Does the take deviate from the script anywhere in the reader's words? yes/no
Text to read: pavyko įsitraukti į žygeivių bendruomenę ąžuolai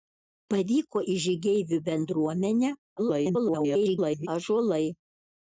yes